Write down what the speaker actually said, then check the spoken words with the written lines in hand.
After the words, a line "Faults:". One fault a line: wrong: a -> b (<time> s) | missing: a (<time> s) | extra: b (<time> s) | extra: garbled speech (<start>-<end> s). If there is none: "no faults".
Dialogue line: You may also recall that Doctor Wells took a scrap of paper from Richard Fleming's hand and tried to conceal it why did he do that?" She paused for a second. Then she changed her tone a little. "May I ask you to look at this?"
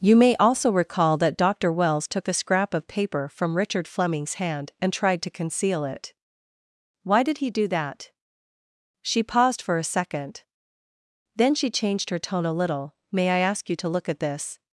You may also recall that Doctor Wells took a scrap of paper from Richard Fleming's hand and tried to conceal it why did he do that?" She paused for a second. Then she changed her tone a little. "May I ask you to look at this?"
Faults:
no faults